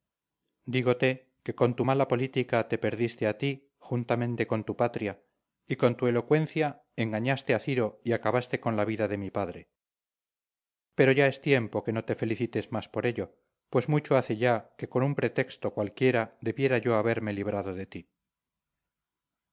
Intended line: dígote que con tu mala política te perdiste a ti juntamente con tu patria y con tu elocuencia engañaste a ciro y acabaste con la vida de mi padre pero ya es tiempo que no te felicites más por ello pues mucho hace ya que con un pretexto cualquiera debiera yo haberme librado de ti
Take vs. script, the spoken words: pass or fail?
pass